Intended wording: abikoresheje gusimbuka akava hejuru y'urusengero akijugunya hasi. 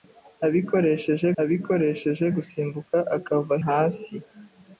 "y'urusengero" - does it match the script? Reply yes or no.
no